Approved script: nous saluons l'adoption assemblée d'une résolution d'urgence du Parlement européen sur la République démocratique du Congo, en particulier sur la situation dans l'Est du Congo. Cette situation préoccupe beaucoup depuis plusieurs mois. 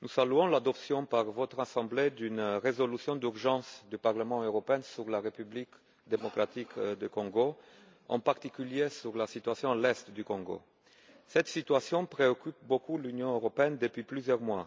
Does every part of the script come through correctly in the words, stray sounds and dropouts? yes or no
no